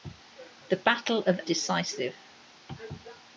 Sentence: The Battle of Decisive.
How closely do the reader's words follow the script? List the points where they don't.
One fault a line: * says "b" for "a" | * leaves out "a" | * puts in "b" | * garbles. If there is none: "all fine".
all fine